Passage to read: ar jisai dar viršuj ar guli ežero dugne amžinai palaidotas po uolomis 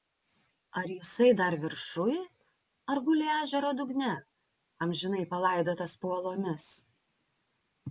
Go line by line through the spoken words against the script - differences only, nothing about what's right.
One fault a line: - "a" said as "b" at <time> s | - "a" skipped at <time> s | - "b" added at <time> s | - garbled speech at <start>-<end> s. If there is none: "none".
none